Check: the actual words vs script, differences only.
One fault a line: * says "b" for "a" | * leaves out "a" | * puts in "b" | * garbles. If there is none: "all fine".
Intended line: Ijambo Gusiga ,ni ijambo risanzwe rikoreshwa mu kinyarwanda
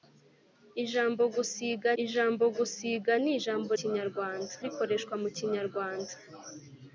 * puts in "ijambo Gusiga"
* says "kinyarwanda" for "risanzwe"